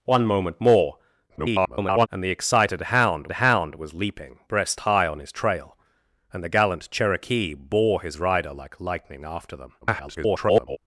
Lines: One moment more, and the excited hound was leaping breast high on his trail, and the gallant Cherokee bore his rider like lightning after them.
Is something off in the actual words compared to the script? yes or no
yes